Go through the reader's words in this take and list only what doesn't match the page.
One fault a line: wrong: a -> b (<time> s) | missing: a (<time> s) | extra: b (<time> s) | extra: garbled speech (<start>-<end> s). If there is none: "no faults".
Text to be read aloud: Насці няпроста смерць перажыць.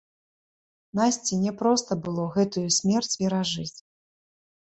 extra: было гэтую (2.1 s)